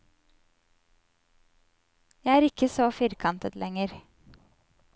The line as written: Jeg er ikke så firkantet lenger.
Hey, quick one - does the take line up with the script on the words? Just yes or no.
yes